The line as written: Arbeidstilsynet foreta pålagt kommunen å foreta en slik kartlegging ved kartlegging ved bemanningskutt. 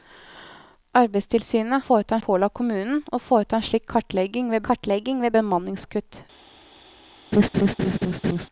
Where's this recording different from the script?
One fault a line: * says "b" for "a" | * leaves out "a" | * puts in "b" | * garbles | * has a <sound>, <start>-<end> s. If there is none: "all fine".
* has a laugh, 7.3-8.5 s